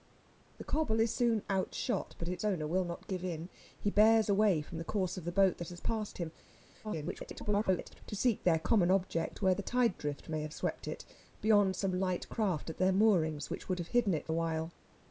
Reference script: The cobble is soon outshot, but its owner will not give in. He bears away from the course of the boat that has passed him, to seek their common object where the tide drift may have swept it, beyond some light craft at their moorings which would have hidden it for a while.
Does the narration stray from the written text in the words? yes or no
yes